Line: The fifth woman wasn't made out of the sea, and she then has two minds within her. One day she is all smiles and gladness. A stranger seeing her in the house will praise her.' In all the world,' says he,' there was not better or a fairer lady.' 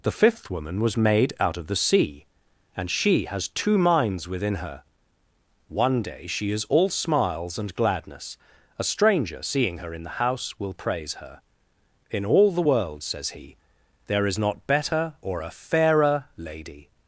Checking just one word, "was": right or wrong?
wrong